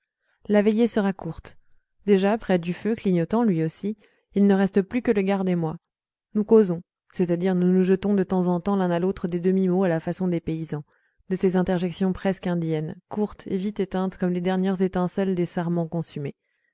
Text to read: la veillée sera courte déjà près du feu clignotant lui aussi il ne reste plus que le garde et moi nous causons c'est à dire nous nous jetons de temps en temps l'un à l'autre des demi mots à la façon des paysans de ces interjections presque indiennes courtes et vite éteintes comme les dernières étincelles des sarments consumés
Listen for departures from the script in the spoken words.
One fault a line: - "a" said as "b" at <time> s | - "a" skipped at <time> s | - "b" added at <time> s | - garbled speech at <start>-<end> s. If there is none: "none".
none